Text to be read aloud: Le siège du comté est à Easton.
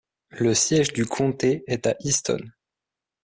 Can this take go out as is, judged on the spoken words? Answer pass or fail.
pass